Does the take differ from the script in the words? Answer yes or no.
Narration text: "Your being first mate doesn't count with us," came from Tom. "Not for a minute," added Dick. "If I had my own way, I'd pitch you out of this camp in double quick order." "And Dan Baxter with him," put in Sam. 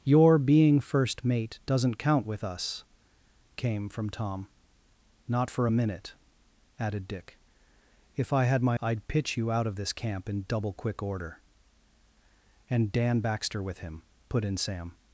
yes